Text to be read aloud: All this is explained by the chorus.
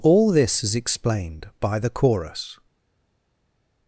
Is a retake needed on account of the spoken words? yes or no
no